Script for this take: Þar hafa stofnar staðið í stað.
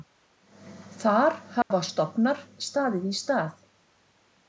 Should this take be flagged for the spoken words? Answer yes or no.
no